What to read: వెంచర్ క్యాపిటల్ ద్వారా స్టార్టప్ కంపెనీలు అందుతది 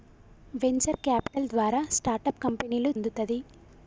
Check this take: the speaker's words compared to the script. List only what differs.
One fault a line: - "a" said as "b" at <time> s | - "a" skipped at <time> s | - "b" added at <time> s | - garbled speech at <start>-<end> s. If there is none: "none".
none